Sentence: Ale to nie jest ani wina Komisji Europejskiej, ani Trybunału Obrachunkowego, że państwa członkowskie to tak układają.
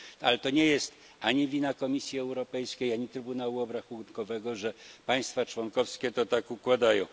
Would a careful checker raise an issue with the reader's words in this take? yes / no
no